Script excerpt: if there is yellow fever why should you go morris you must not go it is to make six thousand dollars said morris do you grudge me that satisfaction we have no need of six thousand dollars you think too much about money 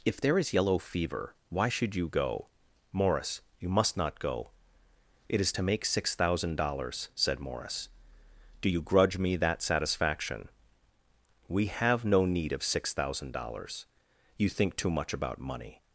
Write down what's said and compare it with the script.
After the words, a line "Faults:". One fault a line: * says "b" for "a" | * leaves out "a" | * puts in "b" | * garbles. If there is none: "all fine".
if there is yellow fever why should you go morris you must not go it is to make six thousand dollars said morris do you grudge me that satisfaction we have no need of six thousand dollars you think too much about money
Faults:
all fine